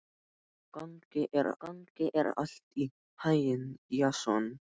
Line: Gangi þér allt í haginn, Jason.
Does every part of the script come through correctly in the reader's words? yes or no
no